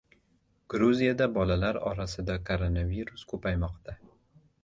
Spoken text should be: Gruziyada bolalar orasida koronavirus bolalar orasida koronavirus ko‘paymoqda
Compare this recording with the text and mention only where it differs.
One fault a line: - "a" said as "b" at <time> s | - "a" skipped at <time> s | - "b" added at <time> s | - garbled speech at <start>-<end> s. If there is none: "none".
- "bolalar orasida koronavirus" skipped at 3.2 s